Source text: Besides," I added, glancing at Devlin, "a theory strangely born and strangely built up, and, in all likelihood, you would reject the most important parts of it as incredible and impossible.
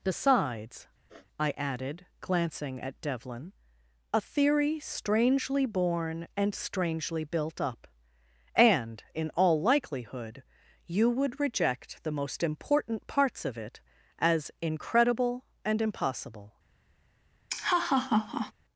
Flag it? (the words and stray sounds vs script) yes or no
yes